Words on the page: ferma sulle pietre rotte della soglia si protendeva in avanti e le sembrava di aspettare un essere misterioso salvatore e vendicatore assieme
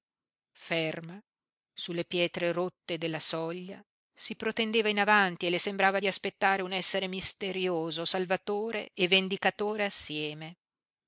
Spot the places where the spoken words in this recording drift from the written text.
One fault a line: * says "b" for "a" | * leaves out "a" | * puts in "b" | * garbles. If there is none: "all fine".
all fine